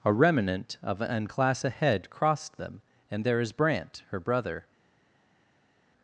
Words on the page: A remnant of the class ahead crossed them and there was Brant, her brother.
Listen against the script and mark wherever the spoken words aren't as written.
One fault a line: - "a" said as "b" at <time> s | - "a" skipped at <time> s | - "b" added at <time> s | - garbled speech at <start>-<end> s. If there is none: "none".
- "the" said as "an" at 1.0 s
- "was" said as "is" at 3.4 s